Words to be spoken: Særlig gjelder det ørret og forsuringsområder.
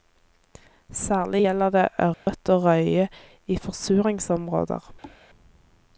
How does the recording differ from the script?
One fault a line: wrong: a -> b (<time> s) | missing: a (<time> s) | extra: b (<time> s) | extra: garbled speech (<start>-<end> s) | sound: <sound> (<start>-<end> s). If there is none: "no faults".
sound: dropout (2.1-2.3 s)
extra: røye i (2.6 s)
sound: thud (5.0-5.2 s)